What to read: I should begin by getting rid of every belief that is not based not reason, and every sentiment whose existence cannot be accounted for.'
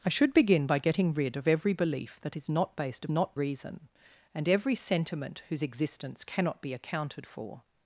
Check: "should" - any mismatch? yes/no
no